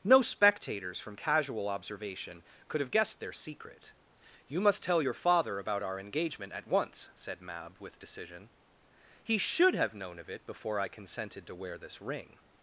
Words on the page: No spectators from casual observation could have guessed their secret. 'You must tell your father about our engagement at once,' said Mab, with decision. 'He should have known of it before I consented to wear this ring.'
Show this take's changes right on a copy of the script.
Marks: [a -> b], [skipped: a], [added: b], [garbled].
No spectators from casual observation could have guessed their secret. 'You must tell your father about our engagement at once,' said Mab, with decision. 'He should have known of it before I consented to wear this ring.'